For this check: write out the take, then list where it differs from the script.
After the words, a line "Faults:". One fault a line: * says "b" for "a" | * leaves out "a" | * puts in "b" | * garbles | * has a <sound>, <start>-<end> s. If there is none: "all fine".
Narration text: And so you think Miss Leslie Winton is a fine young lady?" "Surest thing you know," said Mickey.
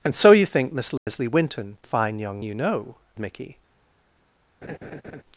And so you think Miss Leslie Winton a fine young you know," Mickey.
Faults:
* has a dropout, 1.0-1.1 s
* leaves out "is"
* leaves out "lady Surest thing"
* leaves out "said"
* has a laugh, 4.6-5.2 s